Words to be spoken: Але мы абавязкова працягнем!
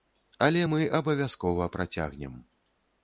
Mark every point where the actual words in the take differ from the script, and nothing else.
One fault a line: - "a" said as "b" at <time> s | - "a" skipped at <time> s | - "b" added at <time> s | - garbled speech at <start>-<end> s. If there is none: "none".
none